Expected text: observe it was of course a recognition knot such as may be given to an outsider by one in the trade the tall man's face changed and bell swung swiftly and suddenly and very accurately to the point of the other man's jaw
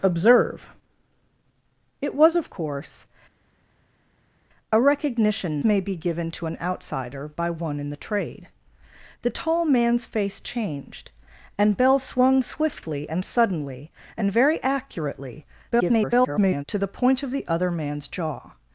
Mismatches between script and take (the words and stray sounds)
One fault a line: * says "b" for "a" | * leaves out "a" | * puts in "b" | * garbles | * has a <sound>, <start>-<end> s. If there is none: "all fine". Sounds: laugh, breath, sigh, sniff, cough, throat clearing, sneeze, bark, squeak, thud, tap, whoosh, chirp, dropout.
* leaves out "knot such as"
* garbles